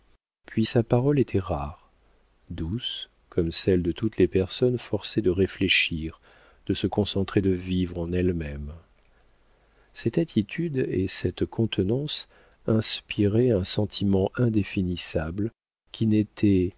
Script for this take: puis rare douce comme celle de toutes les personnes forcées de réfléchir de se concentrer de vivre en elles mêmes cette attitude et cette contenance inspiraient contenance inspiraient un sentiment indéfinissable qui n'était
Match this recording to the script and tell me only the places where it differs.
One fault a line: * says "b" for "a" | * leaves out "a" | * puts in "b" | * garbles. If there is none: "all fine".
* puts in "sa parole était"
* leaves out "contenance inspiraient"